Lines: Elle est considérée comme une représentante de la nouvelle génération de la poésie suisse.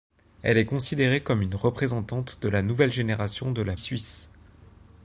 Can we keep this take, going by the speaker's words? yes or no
no